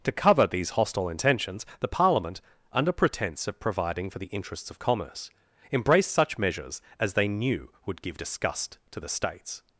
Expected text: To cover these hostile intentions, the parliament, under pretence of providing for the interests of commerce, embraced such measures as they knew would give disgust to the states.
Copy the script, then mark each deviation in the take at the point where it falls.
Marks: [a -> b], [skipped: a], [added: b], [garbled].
To cover these hostile intentions, the parliament, under pretence of providing for the interests of commerce, embraced such measures as they knew would give disgust to the states.